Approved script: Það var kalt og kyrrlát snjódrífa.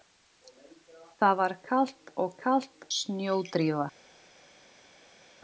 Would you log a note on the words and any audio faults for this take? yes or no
yes